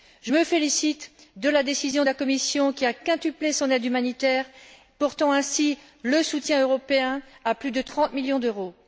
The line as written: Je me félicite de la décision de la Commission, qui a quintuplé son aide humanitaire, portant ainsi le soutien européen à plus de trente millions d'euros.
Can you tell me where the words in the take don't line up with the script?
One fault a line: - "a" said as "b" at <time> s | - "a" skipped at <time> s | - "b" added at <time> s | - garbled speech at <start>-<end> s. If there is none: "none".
none